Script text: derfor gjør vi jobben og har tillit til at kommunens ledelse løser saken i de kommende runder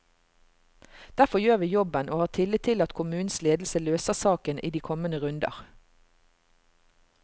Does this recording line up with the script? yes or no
yes